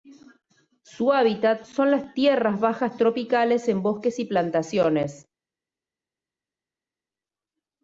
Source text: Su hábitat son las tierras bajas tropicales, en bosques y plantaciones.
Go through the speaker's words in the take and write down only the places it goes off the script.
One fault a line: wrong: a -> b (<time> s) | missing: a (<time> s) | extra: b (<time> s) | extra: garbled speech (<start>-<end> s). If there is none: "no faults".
no faults